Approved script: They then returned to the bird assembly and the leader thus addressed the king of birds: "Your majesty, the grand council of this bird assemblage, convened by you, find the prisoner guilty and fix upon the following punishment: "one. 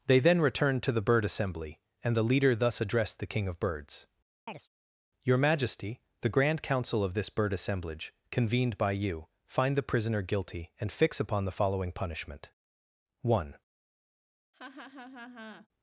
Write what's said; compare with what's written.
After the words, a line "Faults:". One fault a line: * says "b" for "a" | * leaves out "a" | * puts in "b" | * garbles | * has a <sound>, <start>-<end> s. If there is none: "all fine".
They then returned to the bird assembly and the leader thus addressed the king of birds: "Your majesty, the grand council of this bird assemblage, convened by you, find the prisoner guilty and fix upon the following punishment: "one.
Faults:
* has a chirp, 4.5-4.7 s
* has a laugh, 14.5-15.7 s